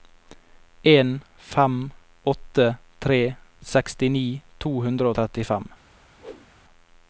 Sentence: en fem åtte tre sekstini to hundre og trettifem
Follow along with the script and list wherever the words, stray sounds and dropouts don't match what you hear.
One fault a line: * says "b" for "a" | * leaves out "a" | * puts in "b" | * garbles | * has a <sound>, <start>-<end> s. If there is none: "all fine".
* has a whoosh, 6.2-6.5 s